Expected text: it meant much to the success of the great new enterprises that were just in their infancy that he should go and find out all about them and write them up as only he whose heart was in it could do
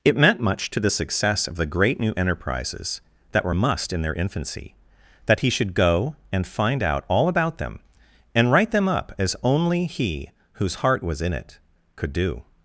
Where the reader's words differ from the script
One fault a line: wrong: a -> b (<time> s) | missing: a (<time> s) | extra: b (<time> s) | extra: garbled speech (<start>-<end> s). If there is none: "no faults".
wrong: just -> must (3.5 s)